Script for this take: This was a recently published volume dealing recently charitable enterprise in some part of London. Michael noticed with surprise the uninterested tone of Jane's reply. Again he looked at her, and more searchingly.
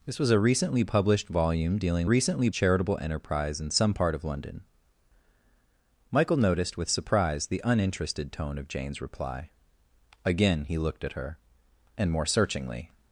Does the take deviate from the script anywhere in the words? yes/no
no